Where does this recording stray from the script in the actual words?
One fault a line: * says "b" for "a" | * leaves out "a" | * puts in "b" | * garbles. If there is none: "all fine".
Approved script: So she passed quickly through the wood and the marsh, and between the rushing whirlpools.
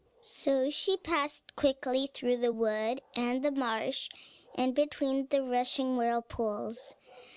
all fine